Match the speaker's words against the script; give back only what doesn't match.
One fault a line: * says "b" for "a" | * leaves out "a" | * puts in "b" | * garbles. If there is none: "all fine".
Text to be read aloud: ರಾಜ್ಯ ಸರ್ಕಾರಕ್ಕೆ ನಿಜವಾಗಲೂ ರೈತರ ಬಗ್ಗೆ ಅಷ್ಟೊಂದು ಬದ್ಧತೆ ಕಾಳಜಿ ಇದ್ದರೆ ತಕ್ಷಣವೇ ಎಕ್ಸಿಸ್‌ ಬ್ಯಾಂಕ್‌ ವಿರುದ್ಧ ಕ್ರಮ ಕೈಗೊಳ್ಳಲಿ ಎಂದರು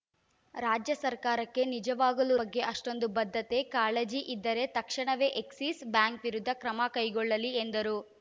* leaves out "ರೈತರ"